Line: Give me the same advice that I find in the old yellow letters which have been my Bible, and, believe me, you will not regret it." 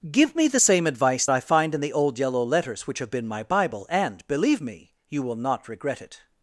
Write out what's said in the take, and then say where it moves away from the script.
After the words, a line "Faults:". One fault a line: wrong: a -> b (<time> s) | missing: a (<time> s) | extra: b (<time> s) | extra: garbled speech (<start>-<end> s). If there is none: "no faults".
Give me the same advice I find in the old yellow letters which have been my Bible, and, believe me, you will not regret it."
Faults:
missing: that (1.3 s)